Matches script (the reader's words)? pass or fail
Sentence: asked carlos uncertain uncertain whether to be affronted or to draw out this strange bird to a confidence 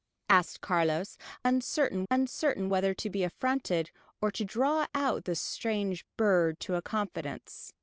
pass